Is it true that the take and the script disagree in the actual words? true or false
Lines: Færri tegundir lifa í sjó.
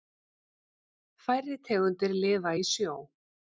false